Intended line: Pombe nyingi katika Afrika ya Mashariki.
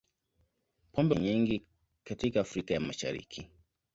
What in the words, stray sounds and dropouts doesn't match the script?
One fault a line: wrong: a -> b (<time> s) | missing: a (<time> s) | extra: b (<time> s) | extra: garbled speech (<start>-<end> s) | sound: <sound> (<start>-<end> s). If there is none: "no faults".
no faults